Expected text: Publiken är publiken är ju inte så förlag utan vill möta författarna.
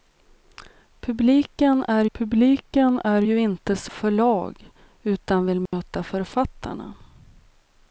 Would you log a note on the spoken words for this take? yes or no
no